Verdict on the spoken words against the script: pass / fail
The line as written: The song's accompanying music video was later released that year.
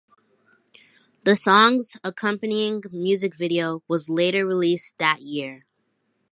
pass